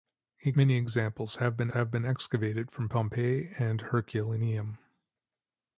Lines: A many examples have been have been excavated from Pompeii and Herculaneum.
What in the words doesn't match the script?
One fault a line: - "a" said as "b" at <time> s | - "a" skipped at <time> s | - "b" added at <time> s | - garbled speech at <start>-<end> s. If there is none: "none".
none